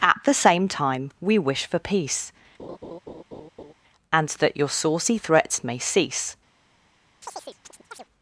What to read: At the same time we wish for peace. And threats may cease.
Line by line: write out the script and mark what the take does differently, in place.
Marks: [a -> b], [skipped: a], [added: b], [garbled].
At the same time we wish for peace. And [added: that your saucy] threats may cease.